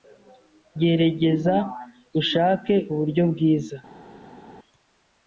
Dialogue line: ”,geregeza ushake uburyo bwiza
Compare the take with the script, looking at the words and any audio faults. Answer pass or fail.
pass